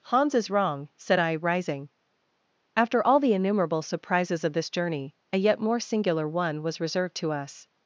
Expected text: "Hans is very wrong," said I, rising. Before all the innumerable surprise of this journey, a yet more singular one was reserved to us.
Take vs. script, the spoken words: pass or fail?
fail